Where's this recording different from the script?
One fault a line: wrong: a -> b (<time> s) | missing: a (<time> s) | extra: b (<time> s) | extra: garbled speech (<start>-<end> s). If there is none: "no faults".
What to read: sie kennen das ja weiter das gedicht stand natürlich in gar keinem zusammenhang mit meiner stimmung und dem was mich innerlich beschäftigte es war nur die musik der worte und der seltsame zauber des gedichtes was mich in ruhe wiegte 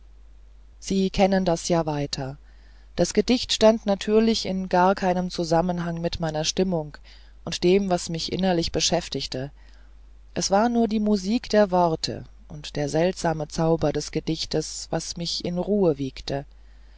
no faults